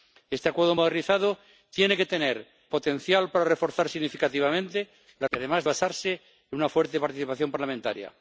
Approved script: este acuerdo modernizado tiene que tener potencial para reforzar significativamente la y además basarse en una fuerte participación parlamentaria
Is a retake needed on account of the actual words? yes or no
no